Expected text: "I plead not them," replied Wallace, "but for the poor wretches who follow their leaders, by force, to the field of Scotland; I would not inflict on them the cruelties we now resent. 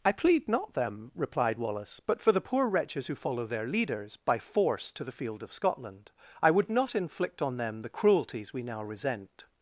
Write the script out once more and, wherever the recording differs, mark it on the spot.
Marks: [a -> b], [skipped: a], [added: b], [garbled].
"I plead not them," replied Wallace, "but for the poor wretches who follow their leaders, by force, to the field of Scotland; I would not inflict on them the cruelties we now resent.